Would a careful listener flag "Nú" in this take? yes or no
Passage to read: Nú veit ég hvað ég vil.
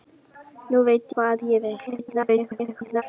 no